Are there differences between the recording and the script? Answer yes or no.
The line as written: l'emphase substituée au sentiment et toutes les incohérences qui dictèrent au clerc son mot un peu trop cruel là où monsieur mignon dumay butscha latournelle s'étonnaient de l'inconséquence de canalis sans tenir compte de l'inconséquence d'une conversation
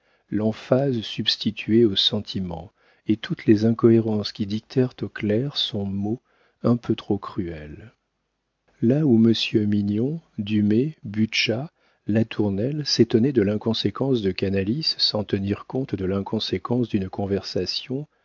no